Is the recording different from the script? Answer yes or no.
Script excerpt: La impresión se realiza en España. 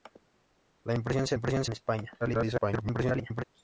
yes